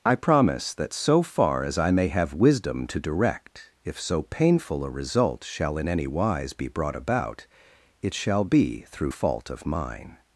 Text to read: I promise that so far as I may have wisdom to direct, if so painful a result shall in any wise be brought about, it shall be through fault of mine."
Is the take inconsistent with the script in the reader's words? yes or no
no